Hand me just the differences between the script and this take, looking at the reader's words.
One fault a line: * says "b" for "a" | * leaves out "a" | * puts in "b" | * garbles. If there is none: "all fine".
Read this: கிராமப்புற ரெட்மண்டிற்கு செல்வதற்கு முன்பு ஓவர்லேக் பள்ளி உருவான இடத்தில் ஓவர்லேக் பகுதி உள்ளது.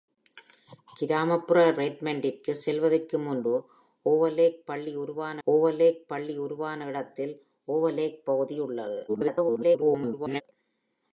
* puts in "ஓவர்லேக் பள்ளி உருவான"
* garbles